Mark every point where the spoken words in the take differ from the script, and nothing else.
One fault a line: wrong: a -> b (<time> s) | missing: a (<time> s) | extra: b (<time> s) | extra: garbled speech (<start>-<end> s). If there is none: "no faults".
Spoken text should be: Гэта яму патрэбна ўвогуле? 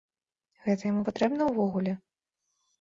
no faults